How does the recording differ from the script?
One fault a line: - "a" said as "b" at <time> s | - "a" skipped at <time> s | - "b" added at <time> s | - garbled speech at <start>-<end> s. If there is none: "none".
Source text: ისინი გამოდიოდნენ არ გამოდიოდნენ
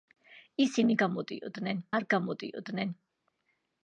none